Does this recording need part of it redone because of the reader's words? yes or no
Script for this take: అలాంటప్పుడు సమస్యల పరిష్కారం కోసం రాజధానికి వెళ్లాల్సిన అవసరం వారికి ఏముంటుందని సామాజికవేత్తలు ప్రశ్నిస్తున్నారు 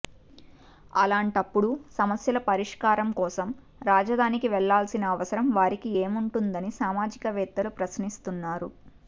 no